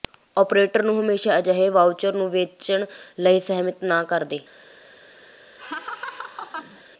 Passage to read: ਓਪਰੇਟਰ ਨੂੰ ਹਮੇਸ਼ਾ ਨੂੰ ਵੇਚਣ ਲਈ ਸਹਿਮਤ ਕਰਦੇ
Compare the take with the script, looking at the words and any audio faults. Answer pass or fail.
fail